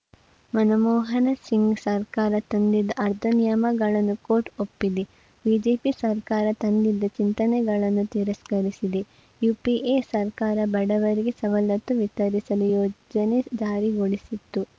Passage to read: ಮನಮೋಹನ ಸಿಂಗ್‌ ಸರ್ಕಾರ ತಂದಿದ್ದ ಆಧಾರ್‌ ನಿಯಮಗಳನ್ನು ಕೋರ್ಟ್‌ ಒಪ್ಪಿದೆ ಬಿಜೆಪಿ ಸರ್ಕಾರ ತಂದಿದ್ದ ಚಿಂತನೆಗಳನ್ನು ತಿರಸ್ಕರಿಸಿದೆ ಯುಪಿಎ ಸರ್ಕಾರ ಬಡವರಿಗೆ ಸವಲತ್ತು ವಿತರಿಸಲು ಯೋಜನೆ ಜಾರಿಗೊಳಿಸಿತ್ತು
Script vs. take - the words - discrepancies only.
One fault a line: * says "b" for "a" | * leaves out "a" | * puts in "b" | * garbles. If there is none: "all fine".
all fine